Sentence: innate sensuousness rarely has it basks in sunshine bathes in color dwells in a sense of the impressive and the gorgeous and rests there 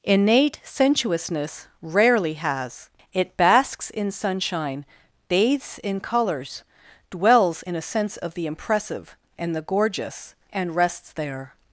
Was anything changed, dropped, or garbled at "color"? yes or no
yes